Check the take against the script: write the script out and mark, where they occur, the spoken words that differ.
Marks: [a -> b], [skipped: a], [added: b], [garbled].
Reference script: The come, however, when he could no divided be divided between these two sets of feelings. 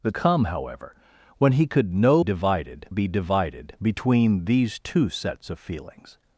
The come, however, when he could no divided be divided between these two sets of feelings.